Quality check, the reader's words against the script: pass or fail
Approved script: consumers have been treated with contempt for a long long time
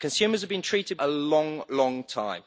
fail